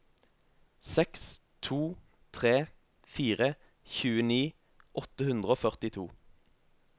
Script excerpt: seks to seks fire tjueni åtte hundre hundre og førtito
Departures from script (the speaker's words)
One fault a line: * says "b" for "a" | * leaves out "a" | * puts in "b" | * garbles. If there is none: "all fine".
* says "tre" for "seks"
* leaves out "hundre"